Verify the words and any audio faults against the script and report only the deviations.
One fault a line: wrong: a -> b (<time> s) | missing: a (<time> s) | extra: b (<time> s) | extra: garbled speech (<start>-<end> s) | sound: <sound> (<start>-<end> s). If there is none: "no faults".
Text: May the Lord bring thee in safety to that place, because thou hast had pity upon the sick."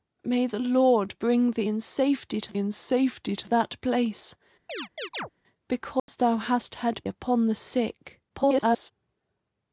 extra: in safety to (2.6 s)
sound: chirp (4.7-5.3 s)
sound: dropout (6.0-6.1 s)
missing: pity (7.0 s)
extra: garbled speech (8.3-8.9 s)